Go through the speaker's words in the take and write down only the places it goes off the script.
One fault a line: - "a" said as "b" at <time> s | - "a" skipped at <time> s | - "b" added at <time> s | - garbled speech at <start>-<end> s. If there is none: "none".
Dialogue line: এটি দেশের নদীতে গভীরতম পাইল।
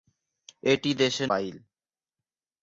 - "নদীতে গভীরতম" skipped at 1.3 s